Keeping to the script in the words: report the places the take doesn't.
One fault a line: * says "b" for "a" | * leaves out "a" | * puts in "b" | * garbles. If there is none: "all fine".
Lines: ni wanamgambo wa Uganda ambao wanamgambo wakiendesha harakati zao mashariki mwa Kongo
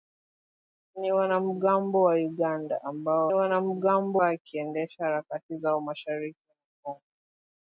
all fine